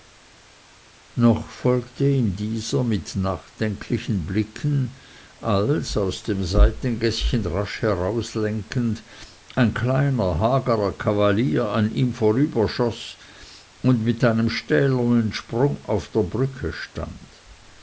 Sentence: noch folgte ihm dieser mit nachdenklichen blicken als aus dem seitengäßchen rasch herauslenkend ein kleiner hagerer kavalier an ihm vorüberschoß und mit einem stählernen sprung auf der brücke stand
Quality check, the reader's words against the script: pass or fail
pass